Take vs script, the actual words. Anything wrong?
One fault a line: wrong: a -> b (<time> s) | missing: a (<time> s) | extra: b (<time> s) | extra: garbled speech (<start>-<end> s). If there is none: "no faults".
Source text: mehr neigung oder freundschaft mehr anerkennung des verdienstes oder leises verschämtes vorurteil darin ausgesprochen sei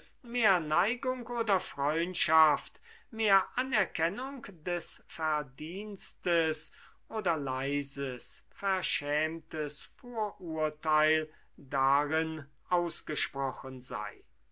no faults